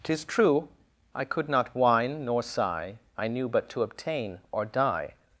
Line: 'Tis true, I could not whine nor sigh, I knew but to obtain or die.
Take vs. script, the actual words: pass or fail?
pass